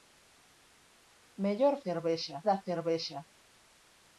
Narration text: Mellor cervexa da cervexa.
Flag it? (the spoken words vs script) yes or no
no